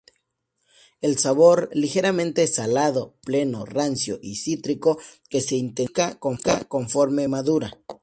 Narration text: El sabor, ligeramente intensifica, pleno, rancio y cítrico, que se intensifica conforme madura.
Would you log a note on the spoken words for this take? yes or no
yes